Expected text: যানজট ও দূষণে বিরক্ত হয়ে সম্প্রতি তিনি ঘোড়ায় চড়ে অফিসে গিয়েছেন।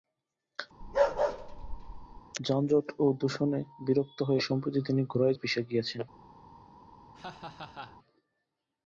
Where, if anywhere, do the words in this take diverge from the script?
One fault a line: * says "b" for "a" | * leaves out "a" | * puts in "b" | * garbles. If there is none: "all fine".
* leaves out "চড়ে"